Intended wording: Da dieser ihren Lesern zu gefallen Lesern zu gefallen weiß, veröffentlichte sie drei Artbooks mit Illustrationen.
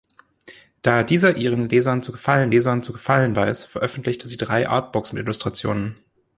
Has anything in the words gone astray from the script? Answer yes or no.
no